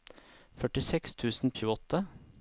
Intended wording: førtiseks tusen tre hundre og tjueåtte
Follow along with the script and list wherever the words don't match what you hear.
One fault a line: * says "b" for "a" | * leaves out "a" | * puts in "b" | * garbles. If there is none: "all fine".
* leaves out "tre hundre"